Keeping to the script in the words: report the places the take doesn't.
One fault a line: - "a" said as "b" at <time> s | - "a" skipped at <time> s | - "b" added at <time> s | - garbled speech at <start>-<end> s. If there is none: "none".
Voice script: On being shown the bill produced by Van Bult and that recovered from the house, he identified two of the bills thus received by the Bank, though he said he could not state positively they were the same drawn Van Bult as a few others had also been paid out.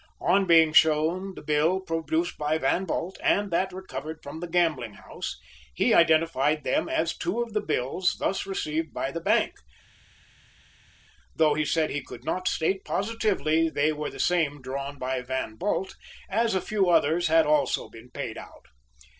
- "gambling" added at 4.5 s
- "them as" added at 6.6 s
- "by" added at 15.0 s